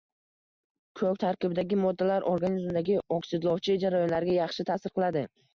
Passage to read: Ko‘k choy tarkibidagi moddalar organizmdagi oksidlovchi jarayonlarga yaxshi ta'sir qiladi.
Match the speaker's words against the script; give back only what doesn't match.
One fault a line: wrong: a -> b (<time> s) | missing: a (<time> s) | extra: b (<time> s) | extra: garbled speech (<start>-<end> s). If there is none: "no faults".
missing: choy (1.2 s)